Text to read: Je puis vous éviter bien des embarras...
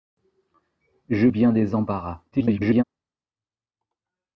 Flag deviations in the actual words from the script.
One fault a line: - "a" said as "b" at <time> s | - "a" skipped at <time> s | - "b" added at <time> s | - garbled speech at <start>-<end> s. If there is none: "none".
- "puis vous éviter" skipped at 1.3 s
- garbled speech at 2.3-2.8 s